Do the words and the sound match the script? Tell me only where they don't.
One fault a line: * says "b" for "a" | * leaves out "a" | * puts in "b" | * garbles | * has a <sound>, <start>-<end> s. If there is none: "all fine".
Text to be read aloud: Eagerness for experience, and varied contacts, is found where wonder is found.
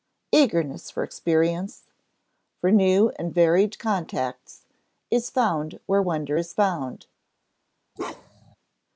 * puts in "for new"
* has a bark, 8.0-8.6 s